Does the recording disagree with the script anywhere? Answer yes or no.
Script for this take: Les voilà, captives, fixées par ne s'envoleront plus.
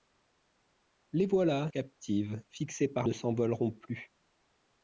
no